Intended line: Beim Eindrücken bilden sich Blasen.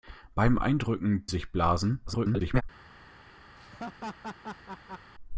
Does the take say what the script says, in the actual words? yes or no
no